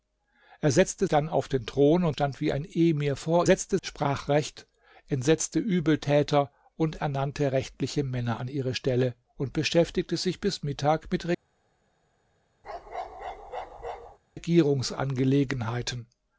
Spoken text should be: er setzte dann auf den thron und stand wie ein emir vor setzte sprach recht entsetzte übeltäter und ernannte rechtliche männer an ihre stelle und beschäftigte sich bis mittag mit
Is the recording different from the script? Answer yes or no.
no